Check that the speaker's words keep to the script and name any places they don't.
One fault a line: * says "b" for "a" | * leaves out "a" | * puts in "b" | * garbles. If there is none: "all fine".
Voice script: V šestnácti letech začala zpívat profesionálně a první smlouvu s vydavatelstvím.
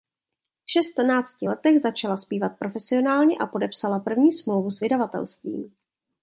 * puts in "podepsala"